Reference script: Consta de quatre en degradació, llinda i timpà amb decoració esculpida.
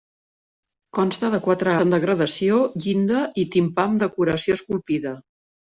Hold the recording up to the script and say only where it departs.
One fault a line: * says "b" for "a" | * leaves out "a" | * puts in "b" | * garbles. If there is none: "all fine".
all fine